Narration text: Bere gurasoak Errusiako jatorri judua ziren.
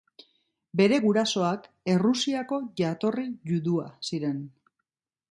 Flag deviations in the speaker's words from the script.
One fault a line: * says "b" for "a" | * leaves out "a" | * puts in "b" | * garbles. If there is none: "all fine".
all fine